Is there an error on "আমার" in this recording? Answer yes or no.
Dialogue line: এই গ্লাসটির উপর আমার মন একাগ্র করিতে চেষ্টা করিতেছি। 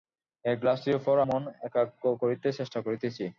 yes